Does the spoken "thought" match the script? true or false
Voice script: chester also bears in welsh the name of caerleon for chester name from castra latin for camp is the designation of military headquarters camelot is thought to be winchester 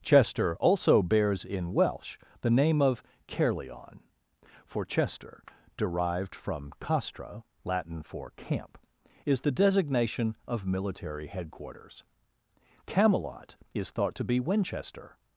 true